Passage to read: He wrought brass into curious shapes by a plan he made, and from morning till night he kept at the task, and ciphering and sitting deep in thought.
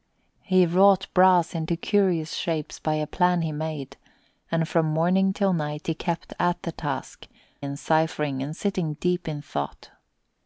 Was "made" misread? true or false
false